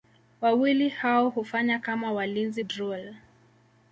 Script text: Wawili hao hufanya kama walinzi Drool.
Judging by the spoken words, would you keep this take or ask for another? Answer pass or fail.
pass